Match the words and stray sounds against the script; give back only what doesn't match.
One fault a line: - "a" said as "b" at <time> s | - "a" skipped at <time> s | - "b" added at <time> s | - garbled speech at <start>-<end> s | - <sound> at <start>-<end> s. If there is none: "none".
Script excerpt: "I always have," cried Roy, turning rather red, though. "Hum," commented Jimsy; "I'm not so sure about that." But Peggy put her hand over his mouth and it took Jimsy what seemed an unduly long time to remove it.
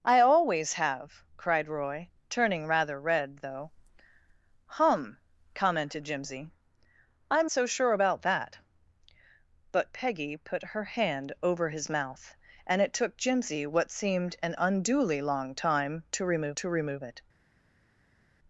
- "not" skipped at 7.5 s
- "to remove" added at 16.6 s